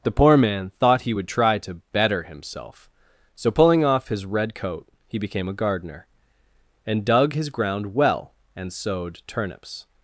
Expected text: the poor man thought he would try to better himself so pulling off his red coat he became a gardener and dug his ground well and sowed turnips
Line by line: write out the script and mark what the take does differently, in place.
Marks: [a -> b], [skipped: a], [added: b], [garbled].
the poor man thought he would try to better himself so pulling off his red coat he became a gardener and dug his ground well and sowed turnips